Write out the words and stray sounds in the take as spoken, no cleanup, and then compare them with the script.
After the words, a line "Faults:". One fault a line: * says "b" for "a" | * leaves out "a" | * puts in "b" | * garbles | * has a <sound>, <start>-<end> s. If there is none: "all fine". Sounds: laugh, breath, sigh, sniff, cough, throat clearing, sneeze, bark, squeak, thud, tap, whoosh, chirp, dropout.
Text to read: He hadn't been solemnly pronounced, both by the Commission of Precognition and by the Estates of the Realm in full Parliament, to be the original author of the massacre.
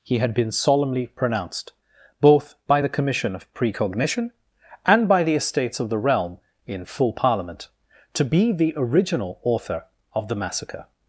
He had been solemnly pronounced, both by the Commission of Precognition and by the Estates of the Realm in full Parliament, to be the original author of the massacre.
Faults:
* says "had" for "hadn't"